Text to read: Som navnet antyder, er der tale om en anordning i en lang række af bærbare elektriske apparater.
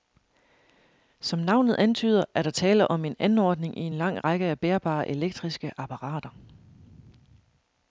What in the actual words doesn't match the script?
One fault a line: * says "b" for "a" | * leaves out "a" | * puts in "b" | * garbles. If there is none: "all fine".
all fine